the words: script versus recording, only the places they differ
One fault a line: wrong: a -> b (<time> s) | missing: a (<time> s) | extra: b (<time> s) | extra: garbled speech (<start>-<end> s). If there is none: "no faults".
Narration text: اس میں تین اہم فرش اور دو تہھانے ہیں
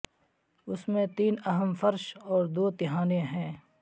no faults